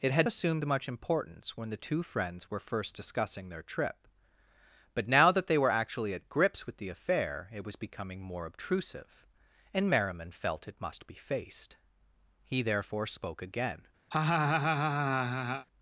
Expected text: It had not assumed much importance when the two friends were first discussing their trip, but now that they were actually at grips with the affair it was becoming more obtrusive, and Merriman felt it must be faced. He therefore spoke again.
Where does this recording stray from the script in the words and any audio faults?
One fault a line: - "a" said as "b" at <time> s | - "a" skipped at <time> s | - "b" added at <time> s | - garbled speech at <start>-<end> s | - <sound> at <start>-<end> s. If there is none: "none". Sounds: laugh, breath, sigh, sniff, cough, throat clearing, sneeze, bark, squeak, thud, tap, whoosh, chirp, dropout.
- "not" skipped at 0.3 s
- laugh at 14.1-15.7 s